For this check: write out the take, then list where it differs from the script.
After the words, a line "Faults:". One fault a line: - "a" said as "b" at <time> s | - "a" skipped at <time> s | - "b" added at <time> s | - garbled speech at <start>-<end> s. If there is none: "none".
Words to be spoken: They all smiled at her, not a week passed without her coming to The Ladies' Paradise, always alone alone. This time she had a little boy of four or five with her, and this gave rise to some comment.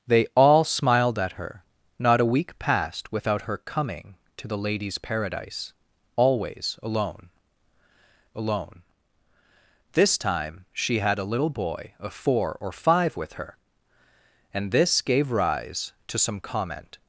They all smiled at her, not a week passed without her coming to The Ladies' Paradise, always alone alone. This time she had a little boy of four or five with her, and this gave rise to some comment.
Faults:
none